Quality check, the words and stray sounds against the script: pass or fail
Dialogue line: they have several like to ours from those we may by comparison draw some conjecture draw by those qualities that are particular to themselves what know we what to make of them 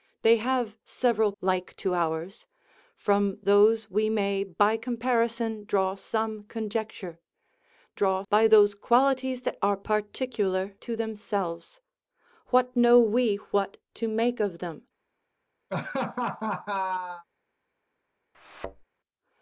fail